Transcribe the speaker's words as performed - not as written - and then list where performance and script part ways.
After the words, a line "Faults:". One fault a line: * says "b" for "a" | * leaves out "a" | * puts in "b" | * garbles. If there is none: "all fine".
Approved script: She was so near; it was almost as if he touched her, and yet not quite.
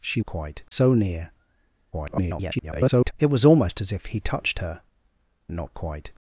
She quite so near; [garbled] it was almost as if he touched her, not quite.
Faults:
* says "quite" for "was"
* garbles
* leaves out "and yet"